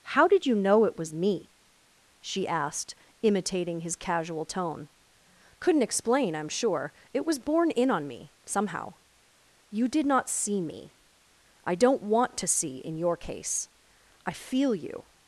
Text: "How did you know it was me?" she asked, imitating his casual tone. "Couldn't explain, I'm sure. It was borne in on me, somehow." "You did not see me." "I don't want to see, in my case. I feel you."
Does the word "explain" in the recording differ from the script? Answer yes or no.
no